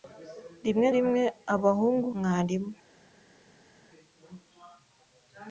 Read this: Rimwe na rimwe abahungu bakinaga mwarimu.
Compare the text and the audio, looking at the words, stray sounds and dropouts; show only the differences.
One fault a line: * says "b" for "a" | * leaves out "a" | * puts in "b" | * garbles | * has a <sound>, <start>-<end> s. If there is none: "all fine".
* leaves out "na"
* leaves out "bakinaga"